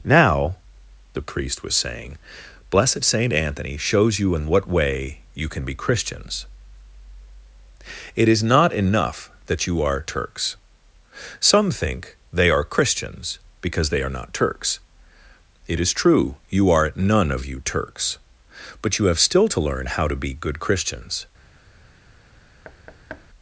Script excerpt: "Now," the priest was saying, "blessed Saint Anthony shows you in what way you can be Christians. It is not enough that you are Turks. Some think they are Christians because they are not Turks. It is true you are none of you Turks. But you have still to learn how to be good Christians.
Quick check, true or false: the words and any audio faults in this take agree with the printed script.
false